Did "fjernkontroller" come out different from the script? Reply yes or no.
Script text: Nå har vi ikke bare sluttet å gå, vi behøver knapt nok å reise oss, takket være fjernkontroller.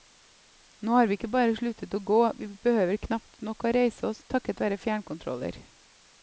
no